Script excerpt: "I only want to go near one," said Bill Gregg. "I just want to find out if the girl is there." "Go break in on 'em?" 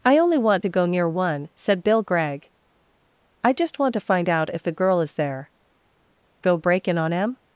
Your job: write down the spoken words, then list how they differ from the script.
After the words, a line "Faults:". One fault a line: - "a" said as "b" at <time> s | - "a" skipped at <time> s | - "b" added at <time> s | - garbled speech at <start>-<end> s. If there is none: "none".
"I only want to go near one," said Bill Gregg. "I just want to find out if the girl is there." "Go break in on 'em?"
Faults:
none